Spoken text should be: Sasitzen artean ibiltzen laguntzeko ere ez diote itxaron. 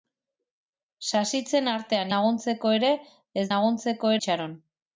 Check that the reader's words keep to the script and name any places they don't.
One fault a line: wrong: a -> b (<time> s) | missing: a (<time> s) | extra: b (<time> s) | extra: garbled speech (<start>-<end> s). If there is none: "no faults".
missing: ibiltzen (2.1 s)
wrong: diote -> laguntzeko (3.6 s)